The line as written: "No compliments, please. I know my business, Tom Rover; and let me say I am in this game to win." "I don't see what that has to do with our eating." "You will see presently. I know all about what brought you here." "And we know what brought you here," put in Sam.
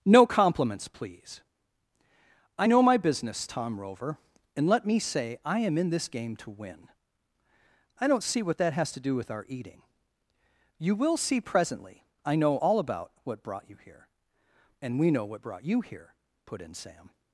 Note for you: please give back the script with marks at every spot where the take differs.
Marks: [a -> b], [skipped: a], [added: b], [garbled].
"No compliments, please. I know my business, Tom Rover; and let me say I am in this game to win." "I don't see what that has to do with our eating." "You will see presently. I know all about what brought you here." "And we know what brought you here," put in Sam.